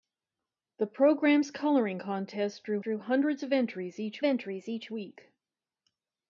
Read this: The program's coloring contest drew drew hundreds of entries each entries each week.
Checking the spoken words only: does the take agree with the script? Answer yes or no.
yes